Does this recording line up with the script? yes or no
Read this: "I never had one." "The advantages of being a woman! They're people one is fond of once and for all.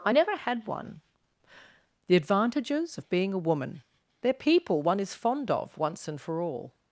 yes